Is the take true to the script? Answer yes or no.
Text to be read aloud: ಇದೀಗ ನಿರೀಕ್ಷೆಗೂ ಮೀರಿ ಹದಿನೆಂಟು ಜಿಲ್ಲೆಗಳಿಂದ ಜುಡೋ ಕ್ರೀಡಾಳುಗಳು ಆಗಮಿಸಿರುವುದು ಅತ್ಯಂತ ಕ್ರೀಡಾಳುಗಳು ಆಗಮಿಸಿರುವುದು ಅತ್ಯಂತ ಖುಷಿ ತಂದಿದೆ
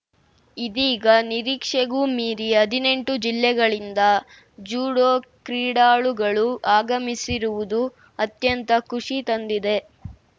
no